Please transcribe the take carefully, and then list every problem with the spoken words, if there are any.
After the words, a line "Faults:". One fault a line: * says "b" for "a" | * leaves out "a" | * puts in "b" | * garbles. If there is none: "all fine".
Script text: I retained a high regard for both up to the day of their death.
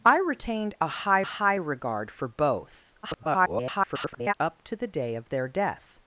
I retained a high high regard for both [garbled] up to the day of their death.
Faults:
* puts in "high"
* garbles